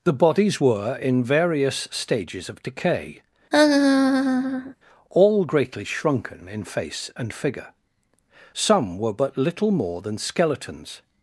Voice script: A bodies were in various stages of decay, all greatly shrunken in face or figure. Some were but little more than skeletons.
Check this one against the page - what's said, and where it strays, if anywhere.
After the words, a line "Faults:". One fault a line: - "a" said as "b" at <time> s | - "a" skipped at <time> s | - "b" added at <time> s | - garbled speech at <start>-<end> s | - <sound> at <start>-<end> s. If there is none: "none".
The bodies were in various stages of decay, all greatly shrunken in face and figure. Some were but little more than skeletons.
Faults:
- "A" said as "The" at 0.0 s
- laugh at 3.5-4.7 s
- "or" said as "and" at 7.1 s